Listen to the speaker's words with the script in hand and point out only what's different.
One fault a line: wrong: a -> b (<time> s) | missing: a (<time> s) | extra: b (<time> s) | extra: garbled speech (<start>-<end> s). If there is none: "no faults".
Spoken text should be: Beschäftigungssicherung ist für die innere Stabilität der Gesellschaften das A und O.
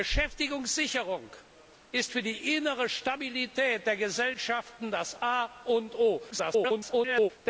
extra: garbled speech (6.3-7.3 s)